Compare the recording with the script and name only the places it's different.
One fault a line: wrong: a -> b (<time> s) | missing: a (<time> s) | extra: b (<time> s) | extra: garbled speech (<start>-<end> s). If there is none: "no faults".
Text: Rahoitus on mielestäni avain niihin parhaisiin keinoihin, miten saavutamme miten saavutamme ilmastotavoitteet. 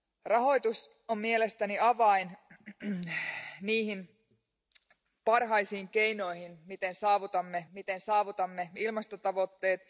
no faults